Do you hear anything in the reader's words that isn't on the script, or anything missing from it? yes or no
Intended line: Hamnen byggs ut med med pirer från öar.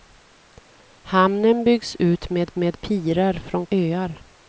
no